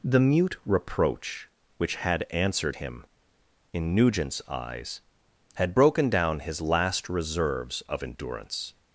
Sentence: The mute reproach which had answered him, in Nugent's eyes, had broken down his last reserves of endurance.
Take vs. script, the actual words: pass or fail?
pass